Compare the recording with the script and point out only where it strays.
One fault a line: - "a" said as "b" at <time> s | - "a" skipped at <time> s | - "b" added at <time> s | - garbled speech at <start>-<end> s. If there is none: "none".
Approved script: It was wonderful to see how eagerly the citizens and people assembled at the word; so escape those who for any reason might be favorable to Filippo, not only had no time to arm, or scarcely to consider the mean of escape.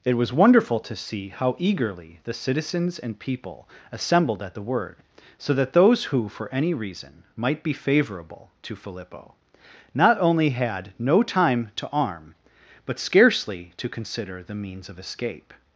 - "escape" said as "that" at 5.5 s
- "or" said as "but" at 12.8 s
- "mean" said as "means" at 14.5 s